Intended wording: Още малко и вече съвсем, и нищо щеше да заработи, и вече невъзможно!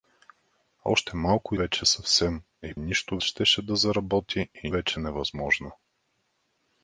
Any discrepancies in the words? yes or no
no